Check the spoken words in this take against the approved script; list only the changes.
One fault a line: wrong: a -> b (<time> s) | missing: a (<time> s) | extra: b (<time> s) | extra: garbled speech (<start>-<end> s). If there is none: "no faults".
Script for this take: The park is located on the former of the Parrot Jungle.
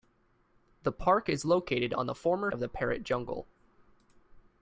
no faults